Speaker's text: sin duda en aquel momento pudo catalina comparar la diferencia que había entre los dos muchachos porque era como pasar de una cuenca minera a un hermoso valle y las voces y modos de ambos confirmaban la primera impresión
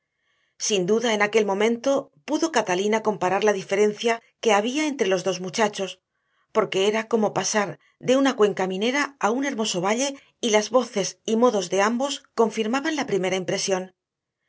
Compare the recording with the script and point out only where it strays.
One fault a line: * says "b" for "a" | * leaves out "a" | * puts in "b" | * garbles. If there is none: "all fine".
all fine